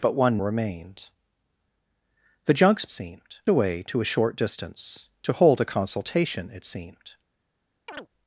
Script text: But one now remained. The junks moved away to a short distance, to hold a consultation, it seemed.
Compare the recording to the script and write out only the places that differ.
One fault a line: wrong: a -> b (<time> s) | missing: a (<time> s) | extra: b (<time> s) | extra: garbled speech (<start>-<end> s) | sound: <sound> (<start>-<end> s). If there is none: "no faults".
missing: now (0.4 s)
wrong: moved -> seemed (2.9 s)
sound: chirp (7.9-8.1 s)